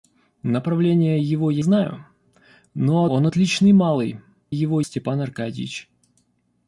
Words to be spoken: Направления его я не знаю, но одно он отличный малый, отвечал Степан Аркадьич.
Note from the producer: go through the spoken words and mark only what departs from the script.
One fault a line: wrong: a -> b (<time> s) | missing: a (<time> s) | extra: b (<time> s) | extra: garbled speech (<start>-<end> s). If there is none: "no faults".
missing: не (1.6 s)
missing: одно (3.1 s)
wrong: отвечал -> его (4.5 s)